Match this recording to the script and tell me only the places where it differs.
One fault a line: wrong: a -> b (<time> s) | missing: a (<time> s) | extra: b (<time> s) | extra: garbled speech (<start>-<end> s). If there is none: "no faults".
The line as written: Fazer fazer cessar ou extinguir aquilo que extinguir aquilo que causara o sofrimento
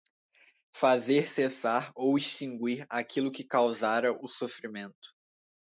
missing: fazer (1.3 s)
missing: extinguir aquilo que (3.4 s)